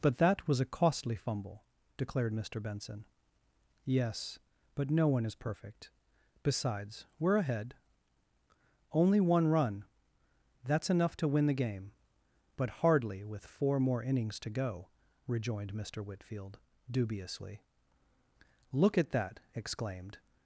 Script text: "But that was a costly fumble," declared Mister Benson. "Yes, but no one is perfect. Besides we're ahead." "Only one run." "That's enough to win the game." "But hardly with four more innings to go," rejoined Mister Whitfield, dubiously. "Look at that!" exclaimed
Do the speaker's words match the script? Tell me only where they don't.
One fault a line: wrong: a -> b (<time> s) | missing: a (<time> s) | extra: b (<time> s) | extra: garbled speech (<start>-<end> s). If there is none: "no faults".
no faults